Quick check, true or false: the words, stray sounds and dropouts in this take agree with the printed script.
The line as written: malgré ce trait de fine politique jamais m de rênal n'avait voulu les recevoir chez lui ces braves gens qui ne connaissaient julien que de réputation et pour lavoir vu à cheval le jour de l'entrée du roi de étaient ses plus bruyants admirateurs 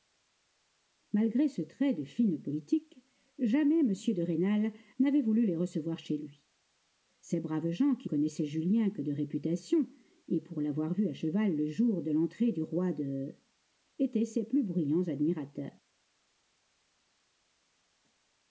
false